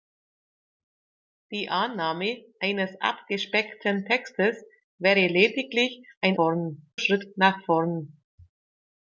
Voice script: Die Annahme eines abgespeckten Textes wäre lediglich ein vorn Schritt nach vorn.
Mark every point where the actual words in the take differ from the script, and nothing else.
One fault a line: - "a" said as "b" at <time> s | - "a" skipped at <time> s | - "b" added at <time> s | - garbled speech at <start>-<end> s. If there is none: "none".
none